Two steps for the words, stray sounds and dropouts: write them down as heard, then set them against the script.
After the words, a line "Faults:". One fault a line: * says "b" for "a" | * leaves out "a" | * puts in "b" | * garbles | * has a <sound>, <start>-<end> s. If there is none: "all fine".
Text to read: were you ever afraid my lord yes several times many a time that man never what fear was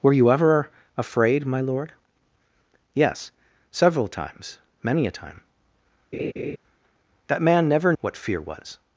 were you ever afraid my lord yes several times many a time that man never what fear was
Faults:
* has a laugh, 6.1-6.6 s